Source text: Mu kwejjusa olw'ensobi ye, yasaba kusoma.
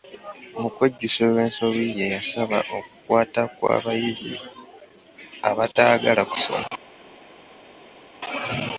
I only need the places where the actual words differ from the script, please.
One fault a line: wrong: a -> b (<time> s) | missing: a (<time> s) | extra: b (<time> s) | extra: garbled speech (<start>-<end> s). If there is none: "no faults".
extra: okukwata kw'abayizi abataagala (2.8 s)